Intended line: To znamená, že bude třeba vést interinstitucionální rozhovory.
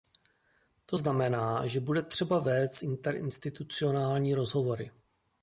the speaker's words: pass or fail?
pass